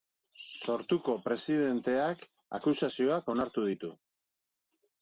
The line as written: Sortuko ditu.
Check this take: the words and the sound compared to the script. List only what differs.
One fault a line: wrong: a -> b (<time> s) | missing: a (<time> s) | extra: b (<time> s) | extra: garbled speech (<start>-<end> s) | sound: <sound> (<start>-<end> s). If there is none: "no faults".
extra: presidenteak akusazioak onartu (1.3 s)